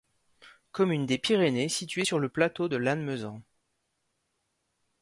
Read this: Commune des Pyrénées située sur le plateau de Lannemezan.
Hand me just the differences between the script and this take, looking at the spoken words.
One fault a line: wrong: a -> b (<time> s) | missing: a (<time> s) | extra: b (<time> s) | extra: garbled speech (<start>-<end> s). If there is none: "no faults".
no faults